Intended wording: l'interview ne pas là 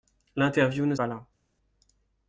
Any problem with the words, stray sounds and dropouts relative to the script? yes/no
no